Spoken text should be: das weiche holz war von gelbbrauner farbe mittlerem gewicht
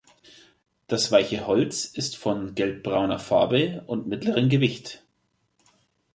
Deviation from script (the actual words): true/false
true